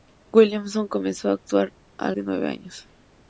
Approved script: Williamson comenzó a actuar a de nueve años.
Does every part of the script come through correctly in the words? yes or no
yes